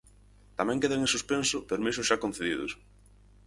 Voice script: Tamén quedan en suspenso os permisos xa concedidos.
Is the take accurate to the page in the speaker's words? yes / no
no